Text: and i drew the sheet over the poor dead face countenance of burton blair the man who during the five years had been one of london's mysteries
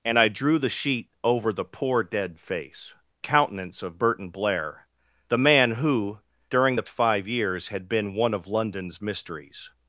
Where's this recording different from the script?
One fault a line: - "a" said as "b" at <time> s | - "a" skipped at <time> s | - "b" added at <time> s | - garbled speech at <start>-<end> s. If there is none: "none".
none